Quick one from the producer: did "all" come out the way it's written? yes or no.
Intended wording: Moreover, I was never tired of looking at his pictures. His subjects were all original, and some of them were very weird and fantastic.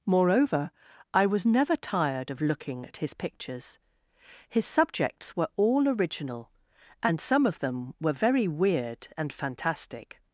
yes